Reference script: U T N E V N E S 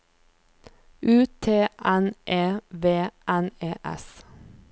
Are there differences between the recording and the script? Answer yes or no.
no